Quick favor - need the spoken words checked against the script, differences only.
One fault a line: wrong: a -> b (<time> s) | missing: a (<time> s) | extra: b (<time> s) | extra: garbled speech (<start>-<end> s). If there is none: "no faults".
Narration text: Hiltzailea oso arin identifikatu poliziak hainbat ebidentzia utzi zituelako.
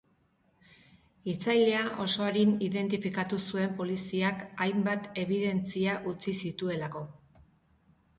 extra: zuen (3.5 s)